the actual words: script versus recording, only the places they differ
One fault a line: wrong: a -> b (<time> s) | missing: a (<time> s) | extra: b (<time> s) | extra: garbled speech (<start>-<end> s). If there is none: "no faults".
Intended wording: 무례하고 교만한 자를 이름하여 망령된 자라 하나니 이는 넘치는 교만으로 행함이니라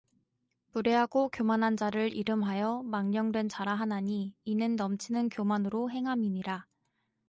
no faults